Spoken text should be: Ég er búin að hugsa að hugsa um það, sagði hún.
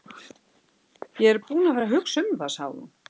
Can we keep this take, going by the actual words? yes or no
no